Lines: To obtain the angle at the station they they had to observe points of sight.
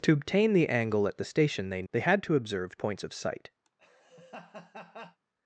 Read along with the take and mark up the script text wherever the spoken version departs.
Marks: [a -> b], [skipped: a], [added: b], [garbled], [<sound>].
To obtain the angle at the station they they had to observe points of sight. [laugh]